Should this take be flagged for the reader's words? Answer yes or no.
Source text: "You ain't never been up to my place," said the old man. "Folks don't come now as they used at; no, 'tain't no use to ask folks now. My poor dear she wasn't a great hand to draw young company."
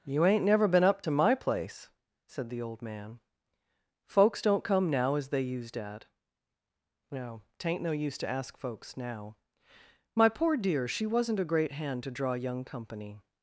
no